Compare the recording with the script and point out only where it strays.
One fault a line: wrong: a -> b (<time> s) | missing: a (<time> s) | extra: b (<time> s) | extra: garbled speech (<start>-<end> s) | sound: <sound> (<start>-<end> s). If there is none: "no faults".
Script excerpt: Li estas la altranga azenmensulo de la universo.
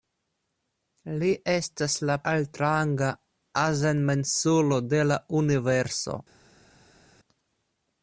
no faults